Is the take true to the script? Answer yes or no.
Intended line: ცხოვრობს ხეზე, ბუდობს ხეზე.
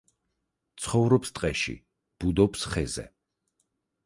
no